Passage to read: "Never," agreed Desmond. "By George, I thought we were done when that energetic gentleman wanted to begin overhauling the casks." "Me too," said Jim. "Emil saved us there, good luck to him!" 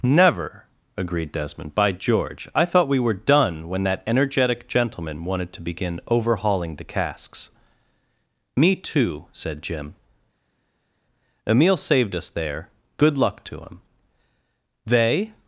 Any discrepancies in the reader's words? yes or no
yes